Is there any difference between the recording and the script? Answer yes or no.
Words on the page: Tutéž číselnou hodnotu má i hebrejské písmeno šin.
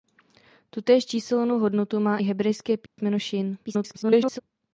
yes